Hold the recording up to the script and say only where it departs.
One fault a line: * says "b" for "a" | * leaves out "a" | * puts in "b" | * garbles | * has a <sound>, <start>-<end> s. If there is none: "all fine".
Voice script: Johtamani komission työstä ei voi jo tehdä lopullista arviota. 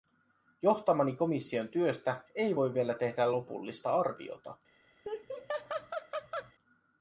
* says "vielä" for "jo"
* has a laugh, 5.0-6.5 s